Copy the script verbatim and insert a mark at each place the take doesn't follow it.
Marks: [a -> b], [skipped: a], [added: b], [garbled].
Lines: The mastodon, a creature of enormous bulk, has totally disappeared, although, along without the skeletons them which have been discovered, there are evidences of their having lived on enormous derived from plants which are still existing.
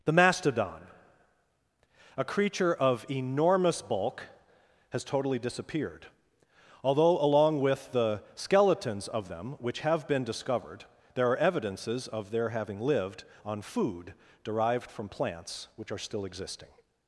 The mastodon, a creature of enormous bulk, has totally disappeared, although, along [without -> with] the skeletons [added: of] them which have been discovered, there are evidences of their having lived on [enormous -> food] derived from plants which are still existing.